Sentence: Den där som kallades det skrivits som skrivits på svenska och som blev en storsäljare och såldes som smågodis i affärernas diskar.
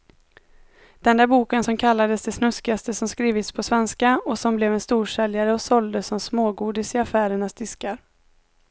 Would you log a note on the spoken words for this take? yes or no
yes